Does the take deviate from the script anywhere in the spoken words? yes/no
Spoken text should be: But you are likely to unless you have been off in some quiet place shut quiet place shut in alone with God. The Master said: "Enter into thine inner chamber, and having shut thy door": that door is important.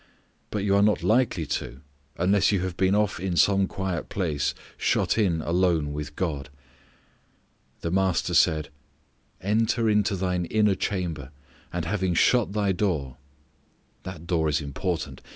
yes